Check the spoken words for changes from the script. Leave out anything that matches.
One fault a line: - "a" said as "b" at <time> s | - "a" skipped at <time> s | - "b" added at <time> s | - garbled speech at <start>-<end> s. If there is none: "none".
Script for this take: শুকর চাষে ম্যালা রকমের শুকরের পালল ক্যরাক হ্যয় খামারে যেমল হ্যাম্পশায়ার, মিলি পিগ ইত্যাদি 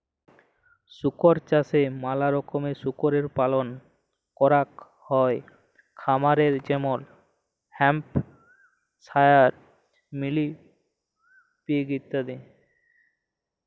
none